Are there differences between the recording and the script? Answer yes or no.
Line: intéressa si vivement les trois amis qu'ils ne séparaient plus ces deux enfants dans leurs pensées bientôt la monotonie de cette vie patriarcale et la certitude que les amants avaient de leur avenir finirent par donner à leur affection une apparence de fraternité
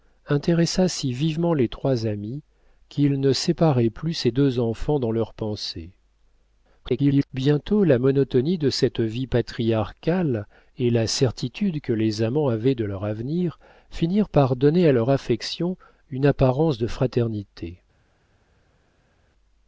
yes